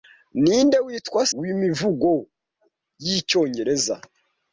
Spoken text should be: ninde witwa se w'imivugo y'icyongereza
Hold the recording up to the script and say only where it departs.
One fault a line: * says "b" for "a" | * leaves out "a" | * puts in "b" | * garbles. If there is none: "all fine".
* leaves out "se"